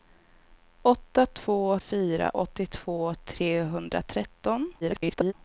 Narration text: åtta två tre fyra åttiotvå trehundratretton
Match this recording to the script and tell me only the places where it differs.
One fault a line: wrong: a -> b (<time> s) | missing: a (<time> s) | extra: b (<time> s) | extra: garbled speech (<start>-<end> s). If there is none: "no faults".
missing: tre (1.8 s)
extra: garbled speech (4.8-5.3 s)